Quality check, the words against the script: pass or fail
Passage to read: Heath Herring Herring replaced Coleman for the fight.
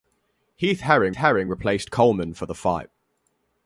pass